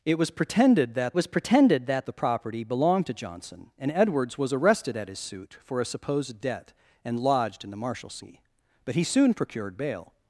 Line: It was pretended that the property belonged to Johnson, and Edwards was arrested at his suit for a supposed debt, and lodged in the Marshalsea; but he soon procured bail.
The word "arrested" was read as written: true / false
true